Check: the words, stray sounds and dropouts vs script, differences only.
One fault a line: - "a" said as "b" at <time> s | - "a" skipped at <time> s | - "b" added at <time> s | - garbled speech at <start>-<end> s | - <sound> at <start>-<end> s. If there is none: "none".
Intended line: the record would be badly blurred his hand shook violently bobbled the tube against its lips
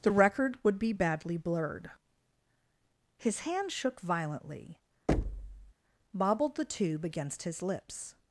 - thud at 5.1-5.7 s
- "its" said as "his" at 7.4 s